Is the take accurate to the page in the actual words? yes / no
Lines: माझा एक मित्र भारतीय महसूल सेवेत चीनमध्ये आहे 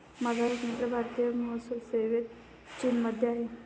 yes